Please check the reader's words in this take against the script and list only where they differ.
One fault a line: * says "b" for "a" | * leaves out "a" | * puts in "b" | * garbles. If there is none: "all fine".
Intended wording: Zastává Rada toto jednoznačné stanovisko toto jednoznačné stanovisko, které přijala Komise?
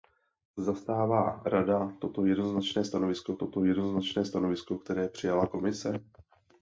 all fine